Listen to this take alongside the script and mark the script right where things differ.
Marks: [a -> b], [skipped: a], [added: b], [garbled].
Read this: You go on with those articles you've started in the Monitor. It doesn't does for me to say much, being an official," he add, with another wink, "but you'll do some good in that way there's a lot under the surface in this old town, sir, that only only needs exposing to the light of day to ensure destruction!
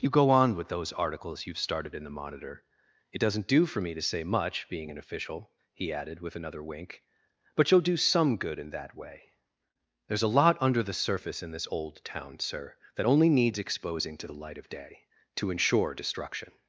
You go on with those articles you've started in the Monitor. It doesn't [does -> do] for me to say much, being an official," he [add, -> added] with another wink, "but you'll do some good in that way there's a lot under the surface in this old town, sir, that only [skipped: only] needs exposing to the light of day to ensure destruction!